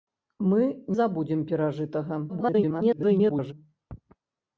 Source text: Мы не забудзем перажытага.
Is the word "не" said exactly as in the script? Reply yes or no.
no